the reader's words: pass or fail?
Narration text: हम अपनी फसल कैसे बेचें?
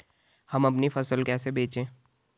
pass